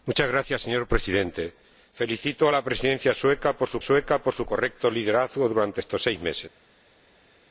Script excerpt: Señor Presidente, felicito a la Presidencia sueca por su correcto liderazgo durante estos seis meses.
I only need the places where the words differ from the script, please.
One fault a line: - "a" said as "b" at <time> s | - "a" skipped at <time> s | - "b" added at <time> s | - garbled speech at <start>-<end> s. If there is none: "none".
- "sueca por su" added at 3.8 s